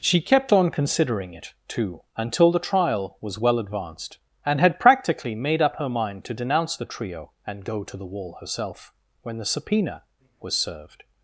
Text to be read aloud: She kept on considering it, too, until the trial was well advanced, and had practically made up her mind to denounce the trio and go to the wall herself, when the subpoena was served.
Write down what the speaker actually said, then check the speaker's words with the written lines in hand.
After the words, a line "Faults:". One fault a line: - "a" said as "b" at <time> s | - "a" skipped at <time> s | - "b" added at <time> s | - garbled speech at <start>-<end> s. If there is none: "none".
She kept on considering it, too, until the trial was well advanced, and had practically made up her mind to denounce the trio and go to the wall herself, when the subpoena was served.
Faults:
none